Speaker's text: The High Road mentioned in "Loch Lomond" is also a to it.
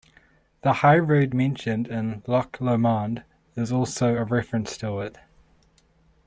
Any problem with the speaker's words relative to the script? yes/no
yes